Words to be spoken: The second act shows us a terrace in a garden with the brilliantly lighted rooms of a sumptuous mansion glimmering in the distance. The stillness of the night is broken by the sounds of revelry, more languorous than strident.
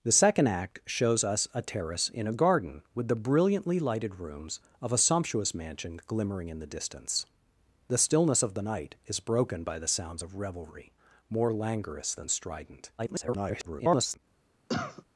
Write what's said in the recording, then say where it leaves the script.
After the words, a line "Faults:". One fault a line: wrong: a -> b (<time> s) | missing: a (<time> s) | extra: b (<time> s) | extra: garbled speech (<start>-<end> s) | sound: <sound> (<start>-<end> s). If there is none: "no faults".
The second act shows us a terrace in a garden with the brilliantly lighted rooms of a sumptuous mansion glimmering in the distance. The stillness of the night is broken by the sounds of revelry, more languorous than strident. [garbled]
Faults:
extra: garbled speech (13.0-14.2 s)
sound: cough (14.7-15.0 s)